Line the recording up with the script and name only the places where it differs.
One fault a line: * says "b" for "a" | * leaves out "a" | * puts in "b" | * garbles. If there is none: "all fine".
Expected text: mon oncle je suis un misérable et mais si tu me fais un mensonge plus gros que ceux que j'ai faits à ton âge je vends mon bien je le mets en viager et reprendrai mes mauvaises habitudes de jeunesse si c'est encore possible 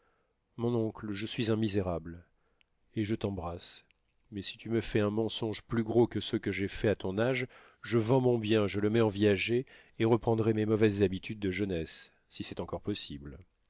* puts in "je t'embrasse"